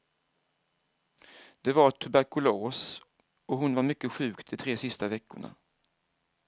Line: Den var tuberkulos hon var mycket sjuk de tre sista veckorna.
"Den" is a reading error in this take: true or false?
true